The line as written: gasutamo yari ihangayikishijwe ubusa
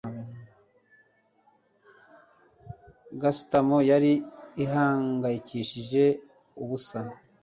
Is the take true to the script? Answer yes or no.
yes